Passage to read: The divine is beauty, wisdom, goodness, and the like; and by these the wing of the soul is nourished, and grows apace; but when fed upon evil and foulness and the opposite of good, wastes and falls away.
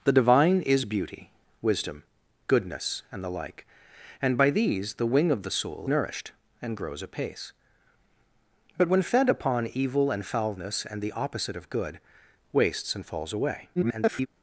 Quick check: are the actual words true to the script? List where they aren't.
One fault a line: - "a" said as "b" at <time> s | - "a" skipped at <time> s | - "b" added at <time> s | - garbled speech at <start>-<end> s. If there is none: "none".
- "is" skipped at 5.9 s
- garbled speech at 13.8-14.3 s